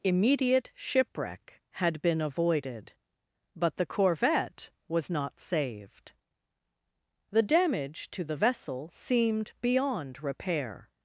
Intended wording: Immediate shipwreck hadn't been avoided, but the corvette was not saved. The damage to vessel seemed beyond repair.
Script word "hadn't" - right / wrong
wrong